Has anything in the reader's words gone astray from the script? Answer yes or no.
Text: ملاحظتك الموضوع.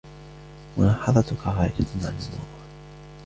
yes